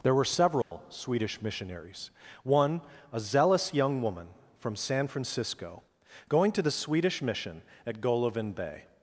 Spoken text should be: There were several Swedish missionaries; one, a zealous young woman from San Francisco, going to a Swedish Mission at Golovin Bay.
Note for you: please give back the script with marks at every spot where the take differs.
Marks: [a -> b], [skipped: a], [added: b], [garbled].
There were several Swedish missionaries; one, a zealous young woman from San Francisco, going to [a -> the] Swedish Mission at Golovin Bay.